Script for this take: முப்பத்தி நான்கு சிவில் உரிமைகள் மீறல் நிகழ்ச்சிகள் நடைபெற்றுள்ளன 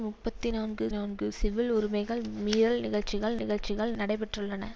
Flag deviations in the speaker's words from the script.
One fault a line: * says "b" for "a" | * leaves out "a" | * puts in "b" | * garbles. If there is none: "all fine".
* puts in "நான்கு"
* puts in "நிகழ்ச்சிகள்"